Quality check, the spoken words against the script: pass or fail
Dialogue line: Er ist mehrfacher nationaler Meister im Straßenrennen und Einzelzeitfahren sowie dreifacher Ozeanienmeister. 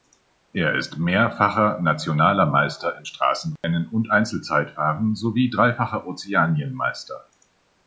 pass